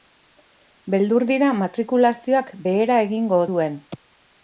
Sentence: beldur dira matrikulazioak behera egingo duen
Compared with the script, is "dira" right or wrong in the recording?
right